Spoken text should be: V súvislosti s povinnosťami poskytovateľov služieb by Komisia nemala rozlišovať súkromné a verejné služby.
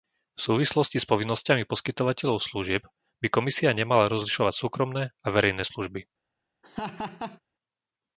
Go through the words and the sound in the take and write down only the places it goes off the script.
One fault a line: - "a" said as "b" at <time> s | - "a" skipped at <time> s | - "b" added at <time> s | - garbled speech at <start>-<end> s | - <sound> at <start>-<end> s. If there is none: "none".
- laugh at 6.6-7.4 s